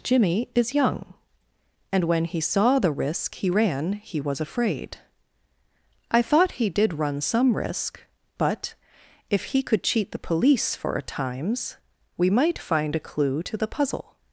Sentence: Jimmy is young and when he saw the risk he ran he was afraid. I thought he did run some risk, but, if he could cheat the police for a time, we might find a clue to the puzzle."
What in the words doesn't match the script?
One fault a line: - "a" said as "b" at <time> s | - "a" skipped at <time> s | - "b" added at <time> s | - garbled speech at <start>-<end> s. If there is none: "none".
- "time" said as "times" at 11.0 s